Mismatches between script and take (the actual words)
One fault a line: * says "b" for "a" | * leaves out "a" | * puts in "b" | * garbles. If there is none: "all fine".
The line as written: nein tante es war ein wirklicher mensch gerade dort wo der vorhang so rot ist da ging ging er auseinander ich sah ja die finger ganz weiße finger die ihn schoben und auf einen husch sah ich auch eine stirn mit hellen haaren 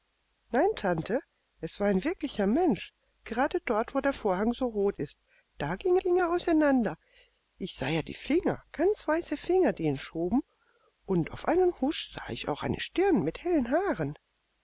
all fine